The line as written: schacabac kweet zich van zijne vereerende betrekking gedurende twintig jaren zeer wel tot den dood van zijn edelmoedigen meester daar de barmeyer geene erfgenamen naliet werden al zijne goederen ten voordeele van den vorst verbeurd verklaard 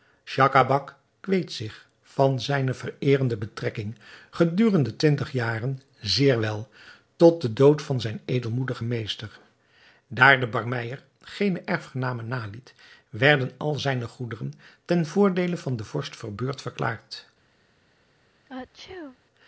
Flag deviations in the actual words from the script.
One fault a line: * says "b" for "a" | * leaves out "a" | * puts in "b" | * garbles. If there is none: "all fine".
all fine